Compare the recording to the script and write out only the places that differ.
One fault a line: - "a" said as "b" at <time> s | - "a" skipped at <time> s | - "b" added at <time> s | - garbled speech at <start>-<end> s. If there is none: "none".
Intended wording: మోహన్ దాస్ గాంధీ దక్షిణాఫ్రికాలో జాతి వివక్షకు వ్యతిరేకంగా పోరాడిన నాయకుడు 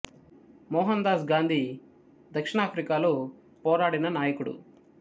- "జాతి వివక్షకు వ్యతిరేకంగా" skipped at 3.1 s